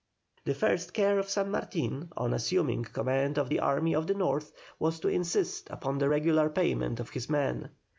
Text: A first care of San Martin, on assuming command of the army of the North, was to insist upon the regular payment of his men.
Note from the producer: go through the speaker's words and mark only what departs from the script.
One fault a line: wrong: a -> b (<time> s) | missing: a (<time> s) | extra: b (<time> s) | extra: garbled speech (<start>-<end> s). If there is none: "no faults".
wrong: A -> The (0.5 s)